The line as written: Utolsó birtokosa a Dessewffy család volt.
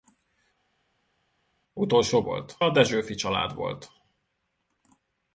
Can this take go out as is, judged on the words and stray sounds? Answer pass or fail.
fail